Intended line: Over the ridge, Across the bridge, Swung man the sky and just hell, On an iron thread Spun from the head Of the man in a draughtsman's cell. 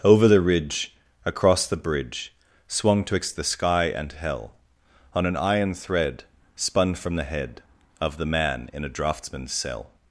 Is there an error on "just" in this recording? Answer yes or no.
yes